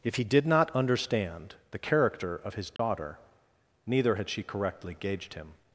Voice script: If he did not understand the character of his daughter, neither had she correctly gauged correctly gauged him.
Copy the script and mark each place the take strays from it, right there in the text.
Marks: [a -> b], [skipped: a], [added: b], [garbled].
If he did not understand the character of his daughter, neither had she correctly gauged [skipped: correctly gauged] him.